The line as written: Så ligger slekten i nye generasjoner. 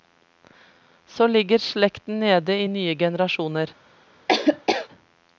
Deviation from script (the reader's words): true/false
true